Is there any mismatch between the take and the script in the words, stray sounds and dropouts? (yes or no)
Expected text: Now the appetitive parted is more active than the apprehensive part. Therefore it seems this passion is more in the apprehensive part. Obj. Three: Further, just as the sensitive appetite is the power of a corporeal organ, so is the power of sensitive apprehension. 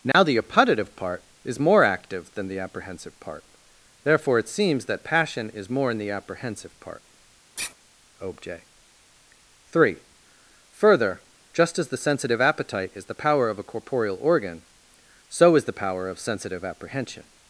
yes